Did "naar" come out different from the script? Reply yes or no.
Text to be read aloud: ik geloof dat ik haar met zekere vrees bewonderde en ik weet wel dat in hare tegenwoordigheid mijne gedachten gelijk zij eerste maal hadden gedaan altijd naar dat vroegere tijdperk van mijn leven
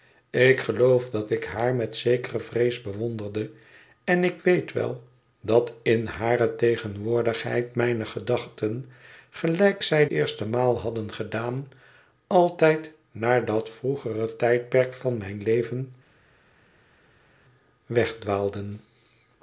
no